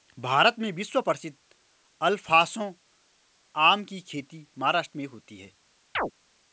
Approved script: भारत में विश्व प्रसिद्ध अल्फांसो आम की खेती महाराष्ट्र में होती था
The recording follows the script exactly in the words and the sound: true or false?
false